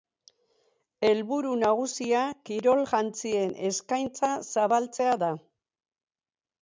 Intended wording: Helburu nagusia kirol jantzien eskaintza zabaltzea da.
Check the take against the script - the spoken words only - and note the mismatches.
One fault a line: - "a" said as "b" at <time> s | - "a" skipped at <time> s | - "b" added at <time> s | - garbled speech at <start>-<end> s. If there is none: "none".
none